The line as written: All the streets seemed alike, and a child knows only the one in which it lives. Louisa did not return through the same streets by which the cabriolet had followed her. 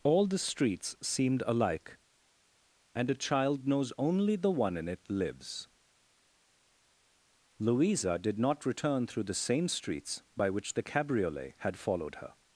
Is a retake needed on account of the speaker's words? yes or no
yes